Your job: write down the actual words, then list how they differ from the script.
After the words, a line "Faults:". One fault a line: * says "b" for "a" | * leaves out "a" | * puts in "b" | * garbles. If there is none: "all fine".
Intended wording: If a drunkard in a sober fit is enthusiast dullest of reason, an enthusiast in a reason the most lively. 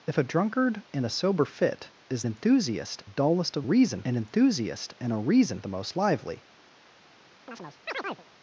If a drunkard in a sober fit is enthusiast dullest of reason, an enthusiast in a reason the most lively.
Faults:
all fine